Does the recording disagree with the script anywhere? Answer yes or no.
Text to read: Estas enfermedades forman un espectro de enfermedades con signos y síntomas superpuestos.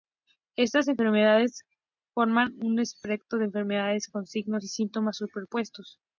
no